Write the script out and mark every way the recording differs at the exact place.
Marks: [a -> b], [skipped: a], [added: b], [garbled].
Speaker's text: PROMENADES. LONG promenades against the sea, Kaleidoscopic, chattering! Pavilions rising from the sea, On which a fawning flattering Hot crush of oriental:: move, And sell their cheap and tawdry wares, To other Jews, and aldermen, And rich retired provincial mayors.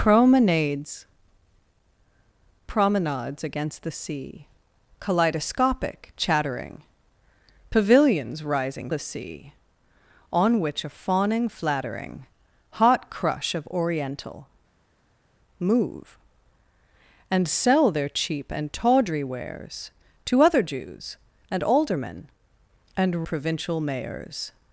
PROMENADES. [skipped: LONG] promenades against the sea, Kaleidoscopic, chattering! Pavilions rising [skipped: from] the sea, On which a fawning flattering Hot crush of oriental:: move, And sell their cheap and tawdry wares, To other Jews, and aldermen, And [skipped: rich retired] provincial mayors.